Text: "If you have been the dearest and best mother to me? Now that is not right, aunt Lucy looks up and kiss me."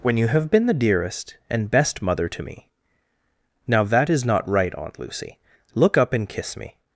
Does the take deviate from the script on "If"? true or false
true